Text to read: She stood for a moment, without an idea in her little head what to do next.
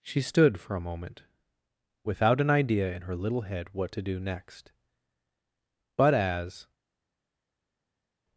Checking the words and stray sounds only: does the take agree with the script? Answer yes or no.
no